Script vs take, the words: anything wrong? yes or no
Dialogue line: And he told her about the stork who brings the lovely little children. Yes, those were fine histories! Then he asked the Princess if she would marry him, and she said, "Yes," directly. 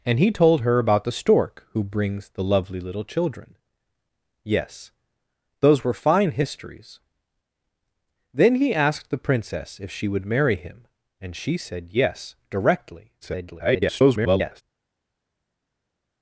yes